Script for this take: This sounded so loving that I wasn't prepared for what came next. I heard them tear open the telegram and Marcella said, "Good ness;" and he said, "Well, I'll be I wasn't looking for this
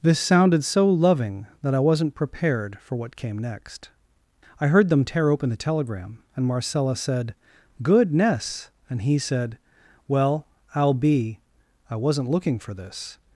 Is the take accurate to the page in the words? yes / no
yes